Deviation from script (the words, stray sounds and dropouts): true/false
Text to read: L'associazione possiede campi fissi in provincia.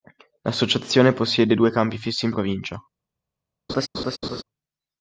true